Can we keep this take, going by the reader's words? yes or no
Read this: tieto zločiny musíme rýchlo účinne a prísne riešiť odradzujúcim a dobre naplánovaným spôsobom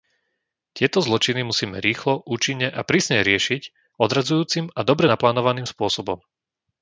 yes